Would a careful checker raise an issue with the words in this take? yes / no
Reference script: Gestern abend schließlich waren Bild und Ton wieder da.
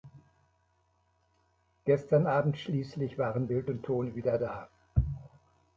no